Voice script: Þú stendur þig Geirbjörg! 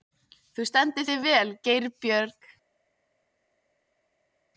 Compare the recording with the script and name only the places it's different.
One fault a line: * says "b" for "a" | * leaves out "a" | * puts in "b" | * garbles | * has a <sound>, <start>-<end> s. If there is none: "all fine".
* puts in "vel"